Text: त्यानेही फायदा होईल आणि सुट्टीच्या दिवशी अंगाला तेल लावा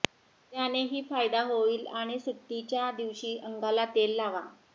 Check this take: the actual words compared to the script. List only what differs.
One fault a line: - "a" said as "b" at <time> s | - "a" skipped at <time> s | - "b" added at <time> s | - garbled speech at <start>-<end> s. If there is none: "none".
none